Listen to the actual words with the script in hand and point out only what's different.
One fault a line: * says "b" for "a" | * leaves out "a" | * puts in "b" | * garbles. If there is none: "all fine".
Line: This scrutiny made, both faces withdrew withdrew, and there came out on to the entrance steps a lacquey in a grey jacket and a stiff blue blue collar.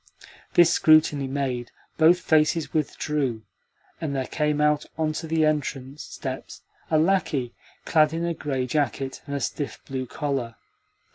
* leaves out "withdrew"
* puts in "clad"
* leaves out "blue"